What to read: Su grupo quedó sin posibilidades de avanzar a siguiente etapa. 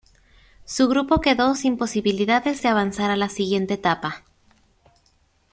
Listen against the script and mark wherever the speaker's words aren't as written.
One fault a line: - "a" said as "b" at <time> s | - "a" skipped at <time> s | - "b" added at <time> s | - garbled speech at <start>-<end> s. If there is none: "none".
- "la" added at 3.2 s